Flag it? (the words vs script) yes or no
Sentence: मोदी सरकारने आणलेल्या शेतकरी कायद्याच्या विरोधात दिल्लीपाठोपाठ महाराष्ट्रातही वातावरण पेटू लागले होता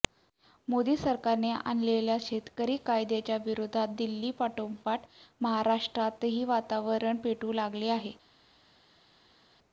yes